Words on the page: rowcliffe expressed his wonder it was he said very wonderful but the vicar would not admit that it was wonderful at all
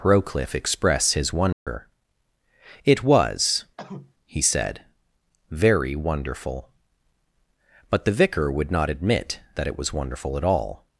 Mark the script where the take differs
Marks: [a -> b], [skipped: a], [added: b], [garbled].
rowcliffe [expressed -> express] his wonder it was he said very wonderful but the vicar would not admit that it was wonderful at all